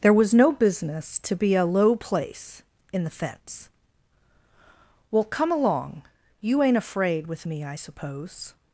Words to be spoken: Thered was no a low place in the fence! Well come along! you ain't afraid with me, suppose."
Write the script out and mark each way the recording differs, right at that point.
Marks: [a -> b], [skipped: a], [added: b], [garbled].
[Thered -> There] was no [added: business to be] a low place in the fence! Well come along! you ain't afraid with me, [added: I] suppose."